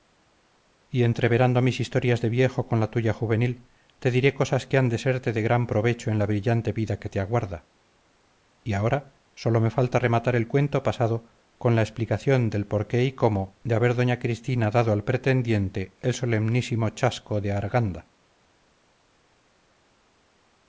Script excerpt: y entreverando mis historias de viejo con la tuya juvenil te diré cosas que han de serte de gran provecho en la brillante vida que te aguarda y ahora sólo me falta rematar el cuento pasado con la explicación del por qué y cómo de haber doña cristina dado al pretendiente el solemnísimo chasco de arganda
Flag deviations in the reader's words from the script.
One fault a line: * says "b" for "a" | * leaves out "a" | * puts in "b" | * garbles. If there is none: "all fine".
all fine